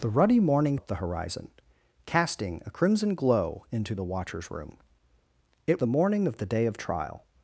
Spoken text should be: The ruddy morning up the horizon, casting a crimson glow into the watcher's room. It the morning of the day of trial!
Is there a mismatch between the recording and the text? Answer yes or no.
no